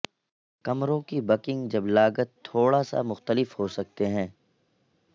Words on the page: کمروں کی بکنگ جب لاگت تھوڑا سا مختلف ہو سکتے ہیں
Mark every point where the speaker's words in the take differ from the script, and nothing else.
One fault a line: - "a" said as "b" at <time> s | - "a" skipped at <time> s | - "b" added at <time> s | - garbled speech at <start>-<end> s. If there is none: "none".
none